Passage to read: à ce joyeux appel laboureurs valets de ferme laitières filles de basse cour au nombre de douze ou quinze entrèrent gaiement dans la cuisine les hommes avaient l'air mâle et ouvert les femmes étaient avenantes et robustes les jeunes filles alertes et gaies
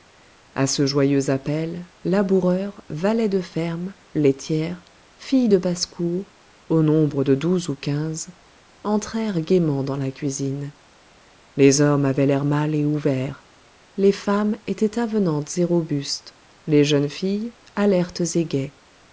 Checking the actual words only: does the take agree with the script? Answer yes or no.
yes